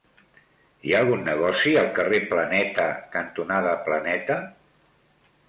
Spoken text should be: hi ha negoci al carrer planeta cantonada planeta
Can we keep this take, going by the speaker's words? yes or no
no